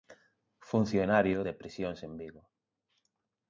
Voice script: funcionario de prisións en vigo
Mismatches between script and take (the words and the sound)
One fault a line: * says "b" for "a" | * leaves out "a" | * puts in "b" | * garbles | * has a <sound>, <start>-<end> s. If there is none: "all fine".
all fine